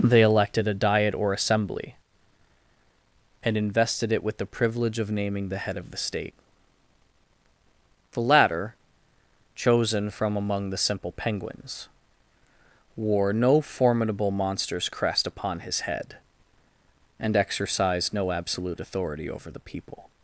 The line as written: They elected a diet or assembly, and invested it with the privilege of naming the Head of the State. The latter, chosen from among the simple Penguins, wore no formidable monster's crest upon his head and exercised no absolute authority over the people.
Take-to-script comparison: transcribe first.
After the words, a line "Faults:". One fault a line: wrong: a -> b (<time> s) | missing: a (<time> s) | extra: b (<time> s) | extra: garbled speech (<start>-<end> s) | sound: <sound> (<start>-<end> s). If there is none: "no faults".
They elected a diet or assembly, and invested it with the privilege of naming the Head of the State. The latter, chosen from among the simple Penguins, wore no formidable monster's crest upon his head and exercised no absolute authority over the people.
Faults:
no faults